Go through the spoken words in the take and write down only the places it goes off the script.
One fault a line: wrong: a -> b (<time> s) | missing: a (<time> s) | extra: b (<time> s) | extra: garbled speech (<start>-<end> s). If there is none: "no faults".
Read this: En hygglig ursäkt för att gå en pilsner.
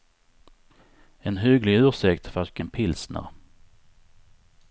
no faults